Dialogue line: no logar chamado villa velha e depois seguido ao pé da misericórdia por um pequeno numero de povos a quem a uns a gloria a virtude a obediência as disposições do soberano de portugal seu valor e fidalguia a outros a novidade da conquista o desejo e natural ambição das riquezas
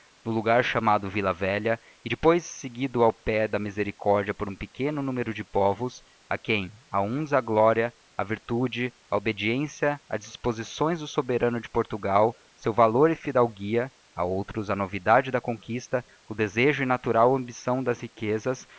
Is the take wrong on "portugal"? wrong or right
right